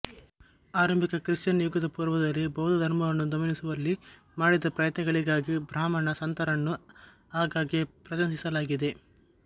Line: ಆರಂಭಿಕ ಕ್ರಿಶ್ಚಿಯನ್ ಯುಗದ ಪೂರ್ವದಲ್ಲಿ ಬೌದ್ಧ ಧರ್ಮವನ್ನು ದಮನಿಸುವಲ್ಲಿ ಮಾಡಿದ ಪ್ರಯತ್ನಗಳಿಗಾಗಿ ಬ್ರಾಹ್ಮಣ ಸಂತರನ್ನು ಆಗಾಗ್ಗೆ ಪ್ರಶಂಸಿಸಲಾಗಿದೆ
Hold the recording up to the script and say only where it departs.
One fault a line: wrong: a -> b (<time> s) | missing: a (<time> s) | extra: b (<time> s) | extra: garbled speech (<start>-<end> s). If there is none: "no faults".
no faults